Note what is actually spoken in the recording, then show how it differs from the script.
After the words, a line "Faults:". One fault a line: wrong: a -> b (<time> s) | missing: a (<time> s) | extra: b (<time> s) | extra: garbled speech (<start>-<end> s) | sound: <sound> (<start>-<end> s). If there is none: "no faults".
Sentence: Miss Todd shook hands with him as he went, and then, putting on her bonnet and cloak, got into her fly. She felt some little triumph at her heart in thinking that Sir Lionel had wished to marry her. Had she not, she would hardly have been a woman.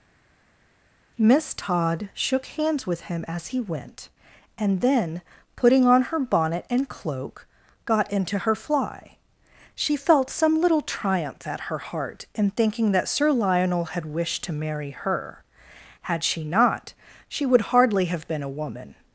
Miss Todd shook hands with him as he went, and then, putting on her bonnet and cloak, got into her fly. She felt some little triumph at her heart in thinking that Sir Lionel had wished to marry her. Had she not, she would hardly have been a woman.
Faults:
no faults